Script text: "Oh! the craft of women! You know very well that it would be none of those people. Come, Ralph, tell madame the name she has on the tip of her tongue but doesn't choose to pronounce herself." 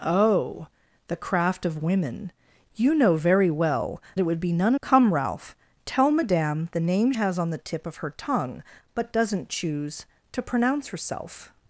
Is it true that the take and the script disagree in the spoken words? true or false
true